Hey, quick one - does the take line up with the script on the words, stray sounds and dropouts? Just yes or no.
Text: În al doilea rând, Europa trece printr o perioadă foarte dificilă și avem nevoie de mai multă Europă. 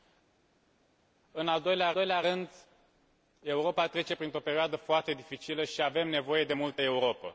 no